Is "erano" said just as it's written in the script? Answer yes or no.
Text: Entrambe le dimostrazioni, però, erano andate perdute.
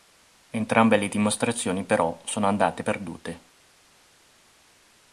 no